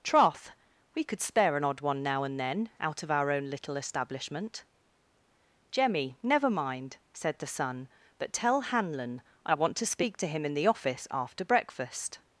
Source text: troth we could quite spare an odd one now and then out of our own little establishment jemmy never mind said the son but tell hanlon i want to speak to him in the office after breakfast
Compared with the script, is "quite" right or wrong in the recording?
wrong